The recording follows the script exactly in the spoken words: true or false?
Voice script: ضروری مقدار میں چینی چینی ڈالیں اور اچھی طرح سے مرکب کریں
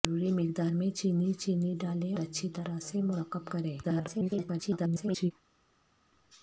false